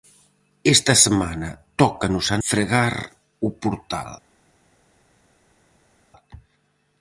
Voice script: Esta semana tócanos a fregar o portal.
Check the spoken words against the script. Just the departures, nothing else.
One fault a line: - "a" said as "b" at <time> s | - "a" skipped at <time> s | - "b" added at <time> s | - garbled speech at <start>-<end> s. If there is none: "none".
none